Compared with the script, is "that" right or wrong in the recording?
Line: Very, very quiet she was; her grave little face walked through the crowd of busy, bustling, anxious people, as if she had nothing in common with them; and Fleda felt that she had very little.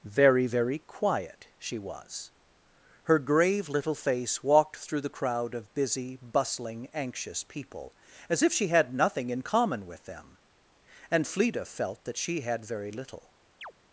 right